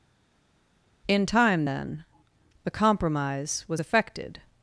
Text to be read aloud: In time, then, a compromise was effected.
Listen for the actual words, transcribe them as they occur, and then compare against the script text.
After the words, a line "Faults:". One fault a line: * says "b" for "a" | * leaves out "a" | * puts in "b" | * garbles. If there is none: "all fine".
In time, then, the compromise was effected.
Faults:
* says "the" for "a"